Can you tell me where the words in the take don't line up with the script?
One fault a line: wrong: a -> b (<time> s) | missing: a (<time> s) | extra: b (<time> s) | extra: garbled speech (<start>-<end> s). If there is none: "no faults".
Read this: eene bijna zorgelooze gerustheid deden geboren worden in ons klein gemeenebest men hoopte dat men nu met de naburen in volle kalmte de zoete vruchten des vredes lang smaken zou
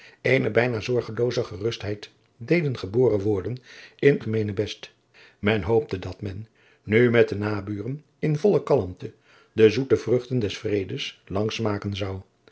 missing: ons klein (4.2 s)